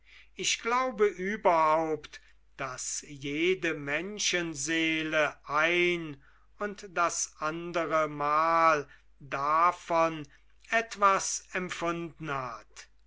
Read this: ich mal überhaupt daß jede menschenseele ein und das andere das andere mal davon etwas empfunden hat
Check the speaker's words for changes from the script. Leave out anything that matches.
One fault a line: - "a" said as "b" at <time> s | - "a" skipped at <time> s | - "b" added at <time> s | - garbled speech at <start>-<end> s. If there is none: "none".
- "mal" said as "glaube" at 0.6 s
- "das andere" skipped at 8.1 s